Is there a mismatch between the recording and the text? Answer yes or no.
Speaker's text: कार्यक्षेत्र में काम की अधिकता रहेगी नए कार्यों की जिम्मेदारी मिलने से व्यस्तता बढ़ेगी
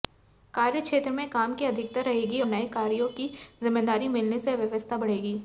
no